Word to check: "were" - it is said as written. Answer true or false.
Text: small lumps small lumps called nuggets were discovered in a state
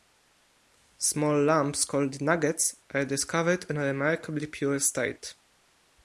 false